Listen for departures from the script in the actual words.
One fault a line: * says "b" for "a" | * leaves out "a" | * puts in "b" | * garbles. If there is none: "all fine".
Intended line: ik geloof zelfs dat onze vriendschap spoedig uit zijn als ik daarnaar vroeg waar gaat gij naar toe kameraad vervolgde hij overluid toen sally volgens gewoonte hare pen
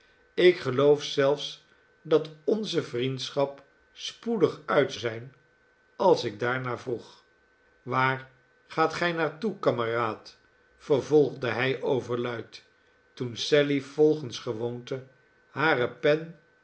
all fine